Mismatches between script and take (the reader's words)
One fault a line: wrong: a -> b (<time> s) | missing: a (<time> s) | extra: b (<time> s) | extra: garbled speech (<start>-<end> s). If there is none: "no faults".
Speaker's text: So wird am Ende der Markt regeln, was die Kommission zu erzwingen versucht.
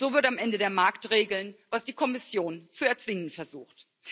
no faults